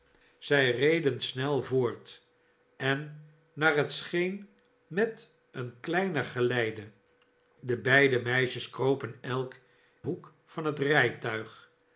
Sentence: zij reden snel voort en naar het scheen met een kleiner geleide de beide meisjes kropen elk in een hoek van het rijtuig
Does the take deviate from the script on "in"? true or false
true